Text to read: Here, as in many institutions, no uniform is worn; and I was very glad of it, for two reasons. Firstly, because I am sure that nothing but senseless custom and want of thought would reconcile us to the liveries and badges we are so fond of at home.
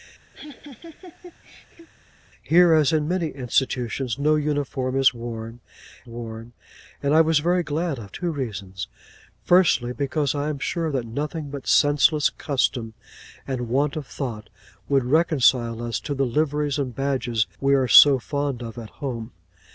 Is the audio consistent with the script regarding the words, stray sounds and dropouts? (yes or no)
no